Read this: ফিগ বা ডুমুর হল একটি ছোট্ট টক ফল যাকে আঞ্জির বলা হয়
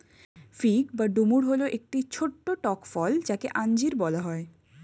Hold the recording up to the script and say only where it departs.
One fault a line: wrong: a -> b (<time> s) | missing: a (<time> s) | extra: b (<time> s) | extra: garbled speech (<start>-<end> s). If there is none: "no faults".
no faults